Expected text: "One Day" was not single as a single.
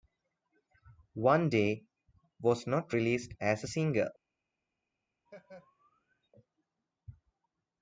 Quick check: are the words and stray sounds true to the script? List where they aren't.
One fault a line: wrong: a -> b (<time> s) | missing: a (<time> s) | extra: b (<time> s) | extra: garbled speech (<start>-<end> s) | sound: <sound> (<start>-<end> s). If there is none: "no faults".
wrong: single -> released (2.9 s)
sound: laugh (5.3-6.3 s)